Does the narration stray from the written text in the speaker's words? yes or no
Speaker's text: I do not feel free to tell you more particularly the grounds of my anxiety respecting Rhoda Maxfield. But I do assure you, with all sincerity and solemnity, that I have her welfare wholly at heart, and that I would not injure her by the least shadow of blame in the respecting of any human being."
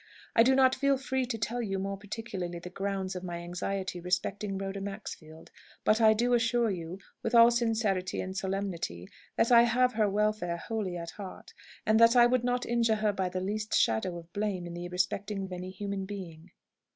no